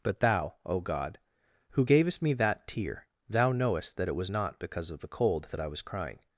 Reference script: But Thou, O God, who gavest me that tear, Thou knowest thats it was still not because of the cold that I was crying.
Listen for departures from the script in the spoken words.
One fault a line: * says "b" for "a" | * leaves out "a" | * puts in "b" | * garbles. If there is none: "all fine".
* says "that" for "thats"
* leaves out "still"